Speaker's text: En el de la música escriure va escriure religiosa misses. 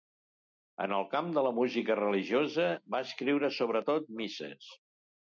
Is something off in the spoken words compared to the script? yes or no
yes